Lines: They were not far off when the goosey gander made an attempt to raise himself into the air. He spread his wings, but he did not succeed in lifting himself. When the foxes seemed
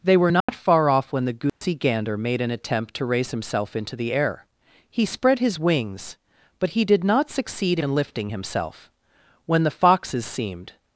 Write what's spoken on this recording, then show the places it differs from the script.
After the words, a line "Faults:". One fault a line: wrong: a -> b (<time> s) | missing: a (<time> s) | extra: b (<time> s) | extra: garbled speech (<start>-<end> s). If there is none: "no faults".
They were not far off when the goosey gander made an attempt to raise himself into the air. He spread his wings, but he did not succeed in lifting himself. When the foxes seemed
Faults:
no faults